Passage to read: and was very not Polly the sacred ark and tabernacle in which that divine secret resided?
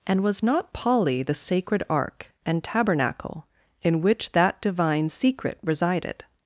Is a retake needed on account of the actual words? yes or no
yes